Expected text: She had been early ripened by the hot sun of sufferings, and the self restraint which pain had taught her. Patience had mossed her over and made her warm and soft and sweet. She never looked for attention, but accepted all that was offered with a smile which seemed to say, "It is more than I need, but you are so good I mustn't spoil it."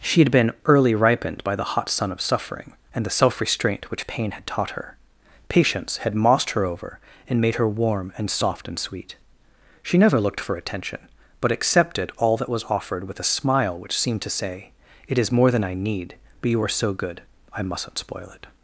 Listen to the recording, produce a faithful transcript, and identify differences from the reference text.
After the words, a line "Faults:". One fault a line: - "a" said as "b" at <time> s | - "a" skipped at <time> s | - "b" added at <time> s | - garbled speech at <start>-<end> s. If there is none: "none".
She had been early ripened by the hot sun of suffering, and the self restraint which pain had taught her. Patience had mossed her over and made her warm and soft and sweet. She never looked for attention, but accepted all that was offered with a smile which seemed to say, "It is more than I need, but you are so good I mustn't spoil it."
Faults:
- "sufferings" said as "suffering" at 2.2 s